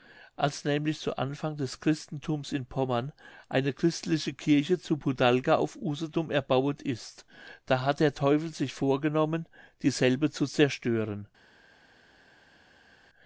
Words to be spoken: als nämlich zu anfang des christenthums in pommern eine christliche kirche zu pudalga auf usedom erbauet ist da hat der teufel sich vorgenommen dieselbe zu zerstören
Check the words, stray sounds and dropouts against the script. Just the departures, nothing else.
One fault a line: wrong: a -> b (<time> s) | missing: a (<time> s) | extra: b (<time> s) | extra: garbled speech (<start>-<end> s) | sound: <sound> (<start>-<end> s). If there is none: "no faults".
no faults